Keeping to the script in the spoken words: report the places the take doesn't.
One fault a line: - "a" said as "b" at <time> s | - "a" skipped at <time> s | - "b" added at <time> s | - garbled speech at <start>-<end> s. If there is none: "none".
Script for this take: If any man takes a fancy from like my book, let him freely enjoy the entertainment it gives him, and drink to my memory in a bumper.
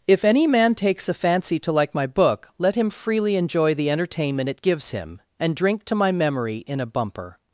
- "from" said as "to" at 1.6 s